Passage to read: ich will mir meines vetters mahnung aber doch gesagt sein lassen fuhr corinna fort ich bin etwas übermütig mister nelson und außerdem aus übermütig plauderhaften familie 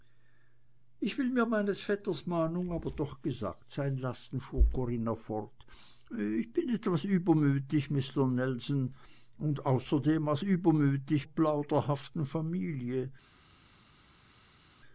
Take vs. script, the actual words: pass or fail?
pass